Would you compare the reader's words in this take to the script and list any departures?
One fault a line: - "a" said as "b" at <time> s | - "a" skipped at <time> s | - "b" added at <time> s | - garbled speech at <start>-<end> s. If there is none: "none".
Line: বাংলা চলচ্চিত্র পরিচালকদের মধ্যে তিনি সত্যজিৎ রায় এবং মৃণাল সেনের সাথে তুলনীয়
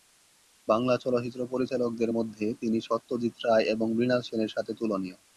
none